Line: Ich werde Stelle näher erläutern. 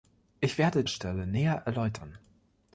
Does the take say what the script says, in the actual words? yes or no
yes